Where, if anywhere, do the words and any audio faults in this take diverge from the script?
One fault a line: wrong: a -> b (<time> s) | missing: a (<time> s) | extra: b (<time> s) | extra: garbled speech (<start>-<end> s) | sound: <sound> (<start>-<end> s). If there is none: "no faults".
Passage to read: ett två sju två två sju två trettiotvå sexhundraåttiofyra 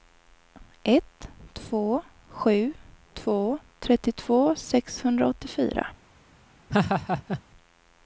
missing: två sju två (3.6 s)
sound: laugh (6.7-7.4 s)